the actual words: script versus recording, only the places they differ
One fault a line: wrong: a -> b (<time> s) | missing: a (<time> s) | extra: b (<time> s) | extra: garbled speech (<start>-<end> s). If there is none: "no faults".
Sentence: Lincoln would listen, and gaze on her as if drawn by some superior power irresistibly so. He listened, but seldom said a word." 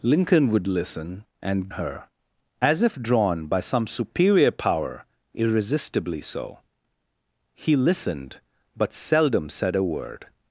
missing: gaze on (1.7 s)